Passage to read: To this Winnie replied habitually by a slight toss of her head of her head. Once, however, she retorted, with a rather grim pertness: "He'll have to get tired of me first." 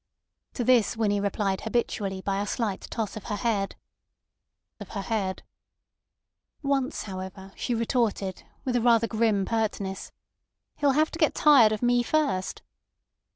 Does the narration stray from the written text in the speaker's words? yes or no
no